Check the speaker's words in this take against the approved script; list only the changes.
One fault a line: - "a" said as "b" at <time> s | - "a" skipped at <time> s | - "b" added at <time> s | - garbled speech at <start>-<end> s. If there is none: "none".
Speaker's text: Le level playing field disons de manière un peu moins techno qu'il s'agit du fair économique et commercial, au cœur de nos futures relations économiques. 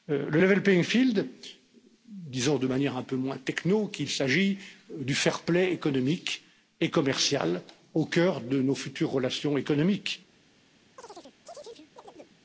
- "play" added at 5.4 s